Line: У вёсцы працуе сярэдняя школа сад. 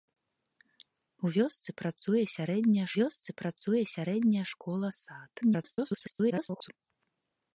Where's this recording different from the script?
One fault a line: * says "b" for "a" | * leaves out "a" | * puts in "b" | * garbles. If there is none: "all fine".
* puts in "вёсцы працуе сярэдняя"
* garbles